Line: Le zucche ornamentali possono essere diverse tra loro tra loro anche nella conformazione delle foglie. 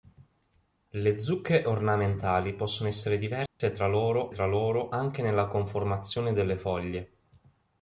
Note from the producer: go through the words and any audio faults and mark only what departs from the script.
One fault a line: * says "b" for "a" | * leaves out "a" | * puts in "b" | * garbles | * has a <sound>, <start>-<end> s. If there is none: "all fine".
* has a dropout, 3.5-3.6 s